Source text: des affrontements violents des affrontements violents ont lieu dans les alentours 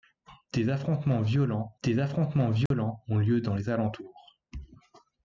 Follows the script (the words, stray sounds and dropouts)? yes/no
no